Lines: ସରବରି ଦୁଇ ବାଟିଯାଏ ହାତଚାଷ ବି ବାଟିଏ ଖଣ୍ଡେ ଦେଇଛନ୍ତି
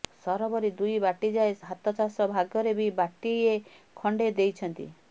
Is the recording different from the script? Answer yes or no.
yes